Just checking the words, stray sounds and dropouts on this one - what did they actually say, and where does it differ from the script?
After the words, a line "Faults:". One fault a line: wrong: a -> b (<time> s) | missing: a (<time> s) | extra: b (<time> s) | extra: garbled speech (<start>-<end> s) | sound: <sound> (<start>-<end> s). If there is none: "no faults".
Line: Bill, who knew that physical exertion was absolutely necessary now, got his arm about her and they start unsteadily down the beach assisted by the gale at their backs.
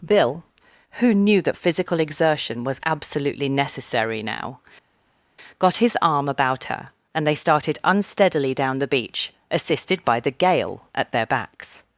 Bill, who knew that physical exertion was absolutely necessary now, got his arm about her and they started unsteadily down the beach assisted by the gale at their backs.
Faults:
wrong: start -> started (7.3 s)